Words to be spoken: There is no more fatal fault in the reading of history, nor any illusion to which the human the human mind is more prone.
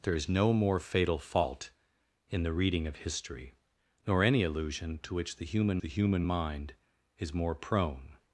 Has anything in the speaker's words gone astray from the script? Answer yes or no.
no